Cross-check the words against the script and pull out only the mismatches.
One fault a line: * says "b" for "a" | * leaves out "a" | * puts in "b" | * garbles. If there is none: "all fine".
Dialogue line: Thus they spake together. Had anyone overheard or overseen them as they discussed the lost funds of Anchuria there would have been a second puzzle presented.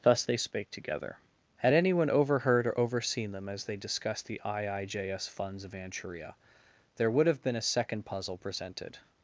* says "iijs" for "lost"